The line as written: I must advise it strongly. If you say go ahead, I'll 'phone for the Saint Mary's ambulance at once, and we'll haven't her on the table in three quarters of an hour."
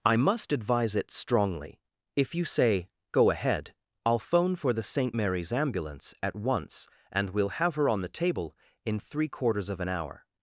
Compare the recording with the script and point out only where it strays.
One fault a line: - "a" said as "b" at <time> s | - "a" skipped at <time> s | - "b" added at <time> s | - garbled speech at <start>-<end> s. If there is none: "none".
- "haven't" said as "have" at 7.6 s